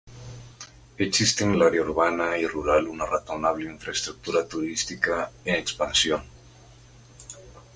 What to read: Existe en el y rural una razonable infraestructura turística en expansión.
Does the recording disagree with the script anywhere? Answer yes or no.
yes